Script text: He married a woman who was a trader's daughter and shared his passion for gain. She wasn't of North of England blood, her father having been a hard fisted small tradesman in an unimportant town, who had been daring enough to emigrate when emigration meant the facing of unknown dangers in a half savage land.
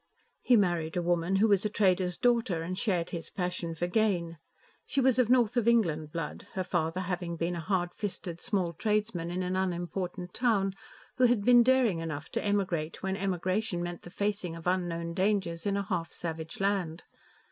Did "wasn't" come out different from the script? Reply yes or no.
yes